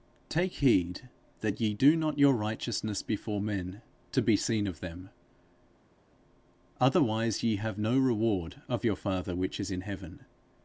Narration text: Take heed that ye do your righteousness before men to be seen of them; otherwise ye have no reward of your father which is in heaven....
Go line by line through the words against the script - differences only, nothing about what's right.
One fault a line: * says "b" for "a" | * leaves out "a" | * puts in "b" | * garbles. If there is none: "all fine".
* puts in "not"